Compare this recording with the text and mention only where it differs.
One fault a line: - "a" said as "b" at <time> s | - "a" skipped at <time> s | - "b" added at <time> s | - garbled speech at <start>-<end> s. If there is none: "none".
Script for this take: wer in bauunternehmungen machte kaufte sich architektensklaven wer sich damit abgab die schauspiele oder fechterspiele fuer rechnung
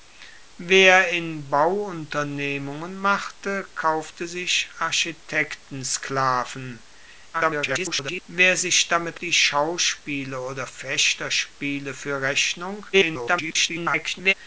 - garbled speech at 7.3-8.2 s
- "abgab" skipped at 9.2 s
- garbled speech at 12.9-14.3 s